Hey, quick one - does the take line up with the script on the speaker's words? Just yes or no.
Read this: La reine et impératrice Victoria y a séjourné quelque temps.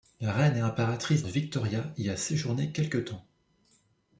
yes